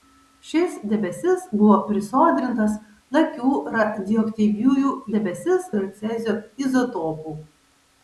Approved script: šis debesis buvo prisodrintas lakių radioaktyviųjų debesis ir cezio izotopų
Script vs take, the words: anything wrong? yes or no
no